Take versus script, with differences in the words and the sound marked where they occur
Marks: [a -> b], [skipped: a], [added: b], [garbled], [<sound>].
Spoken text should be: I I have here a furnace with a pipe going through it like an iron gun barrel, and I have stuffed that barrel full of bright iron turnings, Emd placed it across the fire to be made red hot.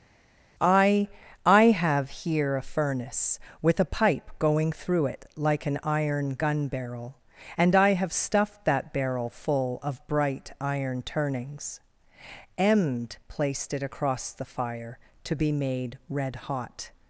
I I have here a furnace with a pipe going through it like an iron gun barrel, and I have stuffed that barrel full of bright iron turnings, Emd placed it across the fire to be made red hot.